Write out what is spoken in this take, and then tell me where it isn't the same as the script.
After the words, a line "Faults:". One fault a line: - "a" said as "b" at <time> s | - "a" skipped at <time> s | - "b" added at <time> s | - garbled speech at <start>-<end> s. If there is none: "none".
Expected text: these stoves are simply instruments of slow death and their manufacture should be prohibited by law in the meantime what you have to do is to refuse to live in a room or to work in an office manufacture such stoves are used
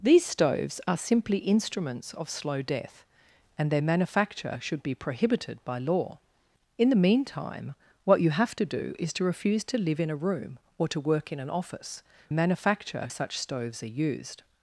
these stoves are simply instruments of slow death and their manufacture should be prohibited by law in the meantime what you have to do is to refuse to live in a room or to work in an office manufacture such stoves are used
Faults:
none